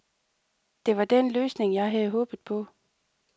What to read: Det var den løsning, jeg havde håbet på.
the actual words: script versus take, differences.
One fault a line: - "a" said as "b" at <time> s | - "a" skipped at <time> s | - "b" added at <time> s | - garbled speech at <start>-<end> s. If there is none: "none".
none